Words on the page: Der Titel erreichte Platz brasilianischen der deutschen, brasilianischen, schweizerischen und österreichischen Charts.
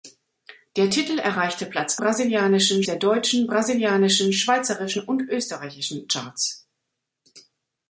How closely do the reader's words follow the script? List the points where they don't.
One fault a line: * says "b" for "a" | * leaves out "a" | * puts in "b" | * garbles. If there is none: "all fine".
all fine